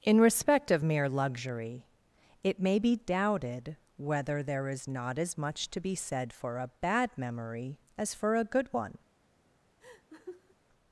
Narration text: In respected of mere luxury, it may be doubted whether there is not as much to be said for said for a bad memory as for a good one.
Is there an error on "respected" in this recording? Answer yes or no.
yes